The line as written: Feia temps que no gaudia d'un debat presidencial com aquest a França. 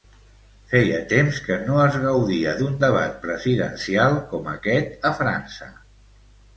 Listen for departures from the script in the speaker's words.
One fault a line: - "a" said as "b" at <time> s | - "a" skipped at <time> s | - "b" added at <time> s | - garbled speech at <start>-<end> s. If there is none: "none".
- "es" added at 1.8 s